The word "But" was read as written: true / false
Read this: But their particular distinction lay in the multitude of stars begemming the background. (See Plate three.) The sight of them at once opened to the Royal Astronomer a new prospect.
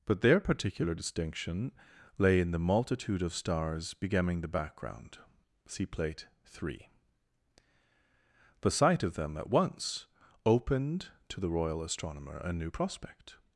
true